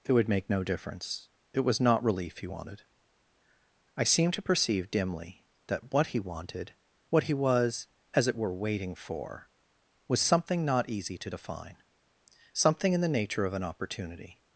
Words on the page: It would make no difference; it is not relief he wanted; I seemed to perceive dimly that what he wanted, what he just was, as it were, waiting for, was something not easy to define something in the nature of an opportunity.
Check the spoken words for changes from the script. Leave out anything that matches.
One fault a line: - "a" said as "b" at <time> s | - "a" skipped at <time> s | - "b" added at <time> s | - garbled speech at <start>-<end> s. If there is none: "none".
- "is" said as "was" at 1.6 s
- "just" skipped at 7.3 s